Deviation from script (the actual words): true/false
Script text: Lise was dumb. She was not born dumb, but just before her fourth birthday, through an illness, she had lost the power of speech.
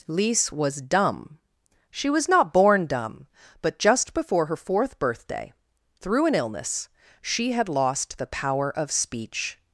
false